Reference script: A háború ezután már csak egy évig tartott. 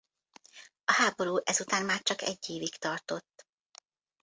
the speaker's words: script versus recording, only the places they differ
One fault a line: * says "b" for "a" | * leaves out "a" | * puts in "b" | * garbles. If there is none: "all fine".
all fine